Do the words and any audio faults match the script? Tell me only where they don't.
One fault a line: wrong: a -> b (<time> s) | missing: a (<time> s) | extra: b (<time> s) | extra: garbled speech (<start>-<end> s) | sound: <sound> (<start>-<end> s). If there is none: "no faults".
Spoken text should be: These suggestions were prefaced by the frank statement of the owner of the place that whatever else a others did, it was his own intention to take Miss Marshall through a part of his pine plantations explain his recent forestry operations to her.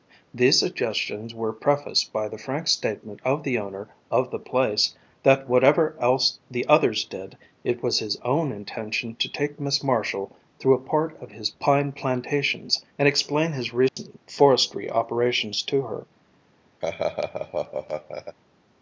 wrong: a -> the (6.5 s)
extra: and (13.0 s)
sound: dropout (13.9-14.0 s)
sound: laugh (16.8-18.4 s)